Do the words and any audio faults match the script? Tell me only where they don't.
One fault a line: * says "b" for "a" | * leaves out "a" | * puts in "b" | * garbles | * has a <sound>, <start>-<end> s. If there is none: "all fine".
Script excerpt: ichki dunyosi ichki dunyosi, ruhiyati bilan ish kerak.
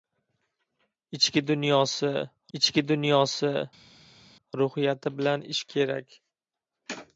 all fine